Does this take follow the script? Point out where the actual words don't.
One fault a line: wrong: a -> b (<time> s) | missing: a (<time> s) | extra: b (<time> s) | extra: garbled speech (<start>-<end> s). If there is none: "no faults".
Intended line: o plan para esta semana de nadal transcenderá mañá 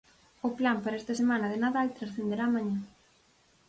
no faults